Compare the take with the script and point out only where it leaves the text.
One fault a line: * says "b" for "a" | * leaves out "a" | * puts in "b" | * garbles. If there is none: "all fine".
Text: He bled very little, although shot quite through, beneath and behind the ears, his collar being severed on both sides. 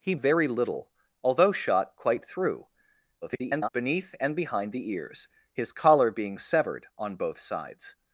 * leaves out "bled"
* garbles